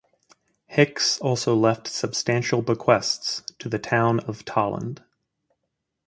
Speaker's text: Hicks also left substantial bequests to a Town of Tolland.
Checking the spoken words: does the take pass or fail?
fail